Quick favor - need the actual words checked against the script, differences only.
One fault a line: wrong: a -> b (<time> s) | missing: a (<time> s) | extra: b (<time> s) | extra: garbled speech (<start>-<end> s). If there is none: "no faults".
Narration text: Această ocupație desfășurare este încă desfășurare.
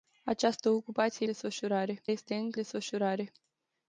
no faults